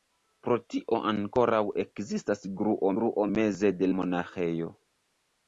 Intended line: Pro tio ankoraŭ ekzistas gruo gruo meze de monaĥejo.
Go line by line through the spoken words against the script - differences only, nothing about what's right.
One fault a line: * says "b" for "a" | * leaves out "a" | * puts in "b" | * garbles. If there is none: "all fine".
all fine